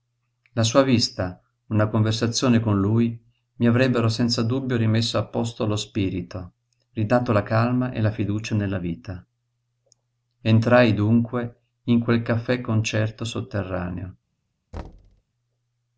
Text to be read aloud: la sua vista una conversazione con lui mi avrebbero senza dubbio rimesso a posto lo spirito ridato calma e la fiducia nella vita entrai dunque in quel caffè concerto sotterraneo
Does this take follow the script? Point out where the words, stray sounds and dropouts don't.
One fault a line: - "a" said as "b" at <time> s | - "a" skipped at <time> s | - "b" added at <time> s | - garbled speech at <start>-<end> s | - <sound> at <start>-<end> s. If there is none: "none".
- "la" added at 7.3 s
- thud at 14.7-15.2 s